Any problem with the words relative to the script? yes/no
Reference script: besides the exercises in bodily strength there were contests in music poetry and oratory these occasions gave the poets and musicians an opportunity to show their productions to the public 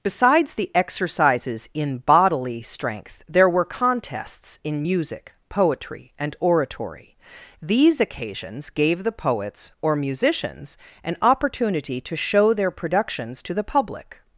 yes